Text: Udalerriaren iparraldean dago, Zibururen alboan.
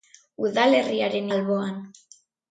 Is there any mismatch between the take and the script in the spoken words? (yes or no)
yes